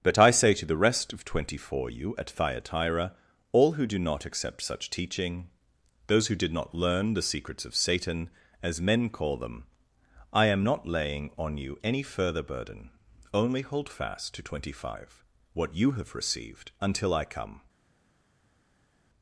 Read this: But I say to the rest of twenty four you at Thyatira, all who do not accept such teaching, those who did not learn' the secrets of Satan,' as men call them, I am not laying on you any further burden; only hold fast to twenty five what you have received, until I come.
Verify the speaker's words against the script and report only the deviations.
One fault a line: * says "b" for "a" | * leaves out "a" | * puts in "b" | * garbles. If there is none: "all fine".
all fine